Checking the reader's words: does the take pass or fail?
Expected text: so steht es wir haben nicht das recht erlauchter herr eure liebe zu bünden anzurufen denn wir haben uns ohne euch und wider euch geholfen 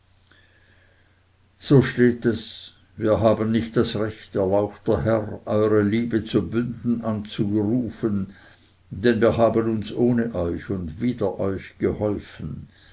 pass